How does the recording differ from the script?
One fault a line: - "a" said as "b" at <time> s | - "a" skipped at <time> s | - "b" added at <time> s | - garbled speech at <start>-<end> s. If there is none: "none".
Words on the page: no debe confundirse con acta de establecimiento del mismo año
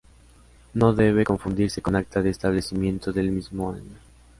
none